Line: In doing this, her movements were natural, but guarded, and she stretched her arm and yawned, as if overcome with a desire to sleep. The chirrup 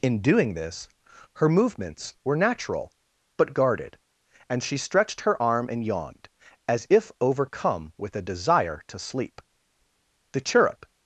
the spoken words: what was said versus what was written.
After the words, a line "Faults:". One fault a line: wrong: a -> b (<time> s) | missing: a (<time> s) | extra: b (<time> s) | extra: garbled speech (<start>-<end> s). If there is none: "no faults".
In doing this, her movements were natural, but guarded, and she stretched her arm and yawned, as if overcome with a desire to sleep. The chirrup
Faults:
no faults